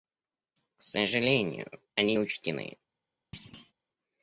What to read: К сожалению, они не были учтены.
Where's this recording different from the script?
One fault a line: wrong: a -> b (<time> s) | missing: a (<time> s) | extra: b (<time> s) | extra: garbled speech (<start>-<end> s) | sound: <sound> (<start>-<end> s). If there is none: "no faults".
missing: не были (2.1 s)
sound: thud (3.3-3.7 s)